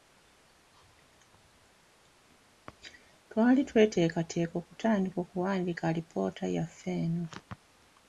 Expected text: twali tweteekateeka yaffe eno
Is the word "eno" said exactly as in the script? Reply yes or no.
yes